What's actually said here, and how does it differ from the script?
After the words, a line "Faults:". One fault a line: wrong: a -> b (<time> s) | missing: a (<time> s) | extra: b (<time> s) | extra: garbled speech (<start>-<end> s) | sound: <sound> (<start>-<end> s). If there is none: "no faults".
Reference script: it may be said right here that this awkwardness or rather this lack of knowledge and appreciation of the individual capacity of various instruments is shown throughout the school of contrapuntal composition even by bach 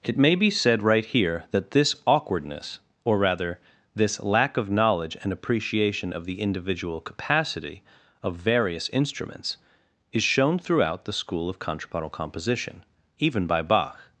it may be said right here that this awkwardness or rather this lack of knowledge and appreciation of the individual capacity of various instruments is shown throughout the school of contrapuntal composition even by bach
Faults:
no faults